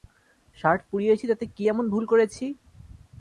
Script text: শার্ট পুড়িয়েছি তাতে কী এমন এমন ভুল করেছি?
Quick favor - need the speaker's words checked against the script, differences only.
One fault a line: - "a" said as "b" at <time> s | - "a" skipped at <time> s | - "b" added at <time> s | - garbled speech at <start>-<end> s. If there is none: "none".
- "এমন" skipped at 1.9 s